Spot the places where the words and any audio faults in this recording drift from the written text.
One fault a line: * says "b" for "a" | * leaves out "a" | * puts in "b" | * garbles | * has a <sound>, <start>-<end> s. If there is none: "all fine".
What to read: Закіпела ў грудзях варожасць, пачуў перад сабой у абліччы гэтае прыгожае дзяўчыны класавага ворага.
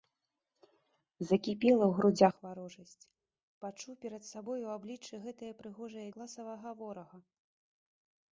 * leaves out "дзяўчыны"